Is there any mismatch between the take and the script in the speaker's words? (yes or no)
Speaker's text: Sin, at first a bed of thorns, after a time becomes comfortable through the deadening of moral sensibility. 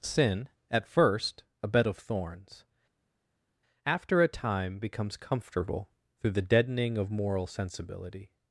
no